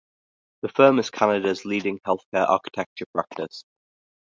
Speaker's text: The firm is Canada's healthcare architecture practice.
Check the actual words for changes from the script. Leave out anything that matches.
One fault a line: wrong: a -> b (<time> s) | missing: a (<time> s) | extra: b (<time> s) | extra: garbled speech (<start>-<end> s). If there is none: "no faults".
extra: leading (1.6 s)